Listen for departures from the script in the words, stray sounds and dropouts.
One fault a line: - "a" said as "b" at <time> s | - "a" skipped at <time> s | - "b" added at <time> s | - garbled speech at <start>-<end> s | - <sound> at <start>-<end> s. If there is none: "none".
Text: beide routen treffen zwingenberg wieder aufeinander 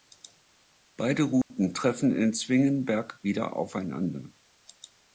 - dropout at 1.4-1.5 s
- "in" added at 2.1 s